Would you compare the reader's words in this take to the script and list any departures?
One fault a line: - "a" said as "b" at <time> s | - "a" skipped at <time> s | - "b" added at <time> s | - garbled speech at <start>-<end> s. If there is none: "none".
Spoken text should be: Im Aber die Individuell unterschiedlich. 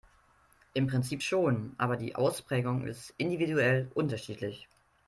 - "Prinzip schon" added at 0.9 s
- "Ausprägung ist" added at 2.1 s